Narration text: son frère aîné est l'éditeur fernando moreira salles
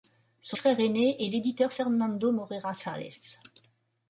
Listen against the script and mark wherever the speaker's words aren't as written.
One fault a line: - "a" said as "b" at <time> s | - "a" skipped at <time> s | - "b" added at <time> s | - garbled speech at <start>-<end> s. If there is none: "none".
none